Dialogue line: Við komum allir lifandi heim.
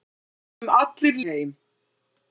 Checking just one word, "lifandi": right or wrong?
wrong